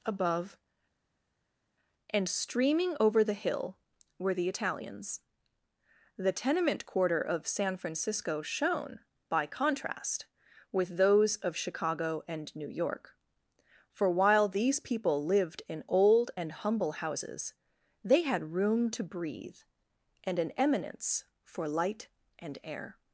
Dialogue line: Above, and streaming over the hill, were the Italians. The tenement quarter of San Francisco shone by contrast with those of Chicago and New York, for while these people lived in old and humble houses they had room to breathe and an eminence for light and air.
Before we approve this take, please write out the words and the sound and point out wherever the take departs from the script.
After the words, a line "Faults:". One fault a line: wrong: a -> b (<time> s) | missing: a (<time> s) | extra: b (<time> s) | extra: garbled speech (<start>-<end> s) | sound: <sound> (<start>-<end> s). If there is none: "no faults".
Above, and streaming over the hill, were the Italians. The tenement quarter of San Francisco shone by contrast with those of Chicago and New York, for while these people lived in old and humble houses they had room to breathe and an eminence for light and air.
Faults:
no faults